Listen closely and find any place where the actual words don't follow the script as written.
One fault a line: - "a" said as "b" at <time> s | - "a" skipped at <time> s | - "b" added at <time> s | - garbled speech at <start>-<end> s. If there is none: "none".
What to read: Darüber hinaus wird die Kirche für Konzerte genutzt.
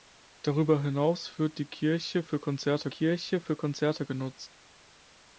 - "Kirche für Konzerte" added at 2.9 s